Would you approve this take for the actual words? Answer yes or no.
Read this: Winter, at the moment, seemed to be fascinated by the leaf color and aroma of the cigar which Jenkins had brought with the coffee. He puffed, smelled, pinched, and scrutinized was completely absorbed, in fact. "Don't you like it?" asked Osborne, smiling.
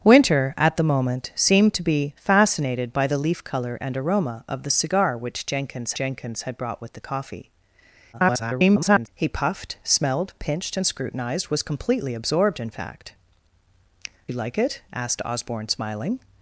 no